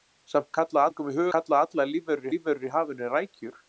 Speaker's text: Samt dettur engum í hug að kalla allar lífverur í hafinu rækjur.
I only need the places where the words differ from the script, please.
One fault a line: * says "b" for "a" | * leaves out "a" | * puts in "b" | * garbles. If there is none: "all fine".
* says "kalla" for "dettur"
* leaves out "að"
* puts in "lífverur"